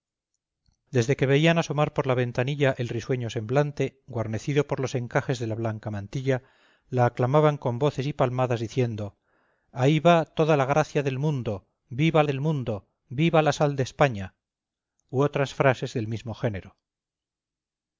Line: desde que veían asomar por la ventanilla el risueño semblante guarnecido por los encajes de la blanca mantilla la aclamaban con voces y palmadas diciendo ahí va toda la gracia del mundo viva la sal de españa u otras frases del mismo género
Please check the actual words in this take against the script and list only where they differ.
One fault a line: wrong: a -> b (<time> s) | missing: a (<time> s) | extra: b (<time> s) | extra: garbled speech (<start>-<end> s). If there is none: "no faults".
extra: del mundo viva (12.3 s)